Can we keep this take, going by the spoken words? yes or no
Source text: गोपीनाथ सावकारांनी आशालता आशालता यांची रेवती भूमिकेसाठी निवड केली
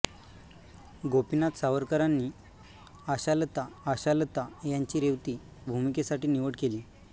yes